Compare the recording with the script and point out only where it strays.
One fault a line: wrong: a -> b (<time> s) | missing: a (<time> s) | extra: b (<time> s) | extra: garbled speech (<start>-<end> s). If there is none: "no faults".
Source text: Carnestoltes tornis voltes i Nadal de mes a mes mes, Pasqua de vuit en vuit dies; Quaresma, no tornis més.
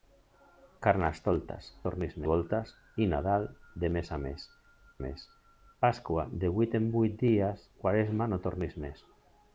no faults